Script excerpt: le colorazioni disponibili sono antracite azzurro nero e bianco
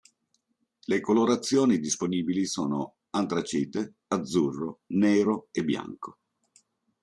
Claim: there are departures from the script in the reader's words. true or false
false